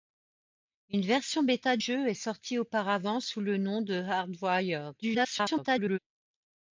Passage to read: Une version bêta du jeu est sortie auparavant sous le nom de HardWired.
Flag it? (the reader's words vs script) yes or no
yes